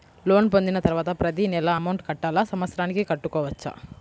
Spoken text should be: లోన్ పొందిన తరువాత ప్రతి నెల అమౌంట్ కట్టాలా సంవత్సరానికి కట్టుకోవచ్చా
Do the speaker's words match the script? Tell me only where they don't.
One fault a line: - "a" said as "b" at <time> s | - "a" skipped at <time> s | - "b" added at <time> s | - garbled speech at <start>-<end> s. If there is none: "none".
none